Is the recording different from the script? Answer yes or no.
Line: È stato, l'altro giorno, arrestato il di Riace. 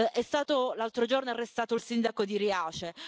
yes